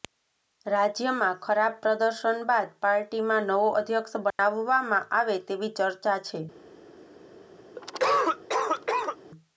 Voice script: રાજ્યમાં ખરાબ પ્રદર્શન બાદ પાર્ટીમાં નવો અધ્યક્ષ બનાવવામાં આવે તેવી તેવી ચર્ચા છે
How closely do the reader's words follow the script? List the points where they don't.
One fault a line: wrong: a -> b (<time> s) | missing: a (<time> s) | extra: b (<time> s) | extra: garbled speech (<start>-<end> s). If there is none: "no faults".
missing: તેવી (5.7 s)